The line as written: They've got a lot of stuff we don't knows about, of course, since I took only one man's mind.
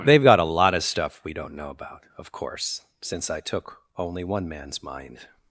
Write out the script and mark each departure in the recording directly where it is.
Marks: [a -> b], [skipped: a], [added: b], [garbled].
They've got a lot of stuff we don't [knows -> know] about, of course, since I took only one man's mind.